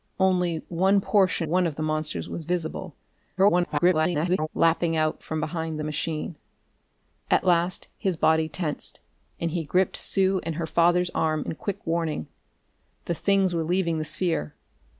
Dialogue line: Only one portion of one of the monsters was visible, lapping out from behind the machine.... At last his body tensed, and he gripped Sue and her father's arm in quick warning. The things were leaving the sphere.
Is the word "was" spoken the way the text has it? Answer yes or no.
yes